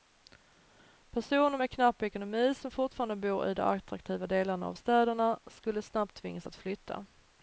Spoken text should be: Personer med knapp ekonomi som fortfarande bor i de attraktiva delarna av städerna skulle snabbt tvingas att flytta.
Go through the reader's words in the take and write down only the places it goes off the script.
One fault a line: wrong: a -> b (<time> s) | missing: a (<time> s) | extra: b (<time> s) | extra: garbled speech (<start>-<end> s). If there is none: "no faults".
no faults